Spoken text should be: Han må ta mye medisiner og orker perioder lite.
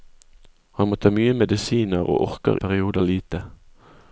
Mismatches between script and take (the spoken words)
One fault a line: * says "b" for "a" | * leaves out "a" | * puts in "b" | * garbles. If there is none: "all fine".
all fine